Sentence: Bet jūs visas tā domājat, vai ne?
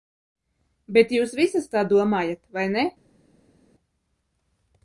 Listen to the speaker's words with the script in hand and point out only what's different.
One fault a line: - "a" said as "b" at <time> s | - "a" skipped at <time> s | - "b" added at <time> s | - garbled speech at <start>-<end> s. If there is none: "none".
none